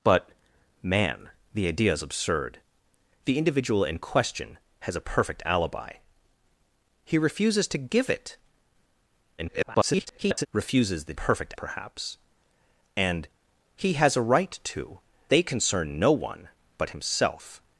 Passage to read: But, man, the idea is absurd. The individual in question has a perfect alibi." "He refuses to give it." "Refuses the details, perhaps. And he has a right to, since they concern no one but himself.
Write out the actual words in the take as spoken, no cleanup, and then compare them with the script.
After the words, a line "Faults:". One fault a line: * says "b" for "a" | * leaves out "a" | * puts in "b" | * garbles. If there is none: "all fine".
But, man, the idea is absurd. The individual in question has a perfect alibi." "He refuses to give it." [garbled] "Refuses the perfect, perhaps. And he has a right to, they concern no one but himself.
Faults:
* garbles
* says "perfect" for "details"
* leaves out "since"